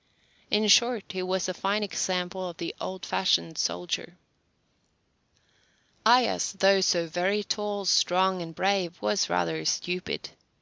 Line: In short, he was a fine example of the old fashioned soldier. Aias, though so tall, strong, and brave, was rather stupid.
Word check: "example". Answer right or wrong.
right